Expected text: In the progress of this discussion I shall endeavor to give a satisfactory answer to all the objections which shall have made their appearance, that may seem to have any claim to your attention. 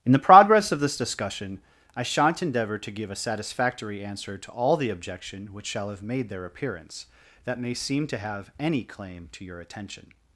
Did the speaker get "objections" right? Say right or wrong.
wrong